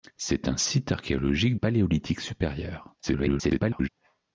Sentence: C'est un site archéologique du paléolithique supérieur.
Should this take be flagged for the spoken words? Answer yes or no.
yes